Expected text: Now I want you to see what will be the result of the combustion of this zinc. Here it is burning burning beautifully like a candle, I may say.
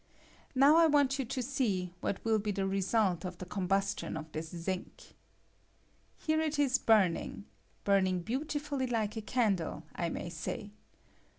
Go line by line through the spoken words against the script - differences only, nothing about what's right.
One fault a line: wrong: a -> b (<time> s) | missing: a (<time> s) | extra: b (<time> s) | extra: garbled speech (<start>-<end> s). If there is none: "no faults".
no faults